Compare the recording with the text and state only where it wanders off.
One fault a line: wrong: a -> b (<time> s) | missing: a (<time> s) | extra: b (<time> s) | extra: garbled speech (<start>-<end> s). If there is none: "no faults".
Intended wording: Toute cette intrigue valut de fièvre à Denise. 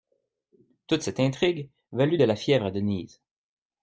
extra: la (2.2 s)